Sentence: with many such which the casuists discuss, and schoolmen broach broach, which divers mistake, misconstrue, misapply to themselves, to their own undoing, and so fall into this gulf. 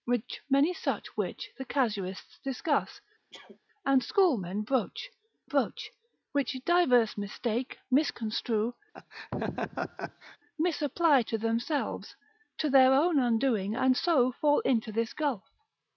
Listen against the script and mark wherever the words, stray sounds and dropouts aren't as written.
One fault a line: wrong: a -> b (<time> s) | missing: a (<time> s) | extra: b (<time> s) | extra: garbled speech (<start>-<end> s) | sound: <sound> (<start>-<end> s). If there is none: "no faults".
sound: sneeze (3.3-3.6 s)
sound: laugh (8.9-10.4 s)